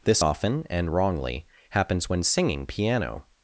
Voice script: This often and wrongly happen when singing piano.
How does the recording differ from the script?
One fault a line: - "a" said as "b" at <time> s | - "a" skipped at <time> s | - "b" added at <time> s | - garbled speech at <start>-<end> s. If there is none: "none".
- "happen" said as "happens" at 1.7 s